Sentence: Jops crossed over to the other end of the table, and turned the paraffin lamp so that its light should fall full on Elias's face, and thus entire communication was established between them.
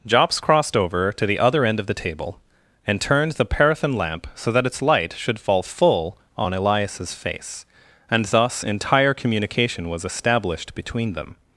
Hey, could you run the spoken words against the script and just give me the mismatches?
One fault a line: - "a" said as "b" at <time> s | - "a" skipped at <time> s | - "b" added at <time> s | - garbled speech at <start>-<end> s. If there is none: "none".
none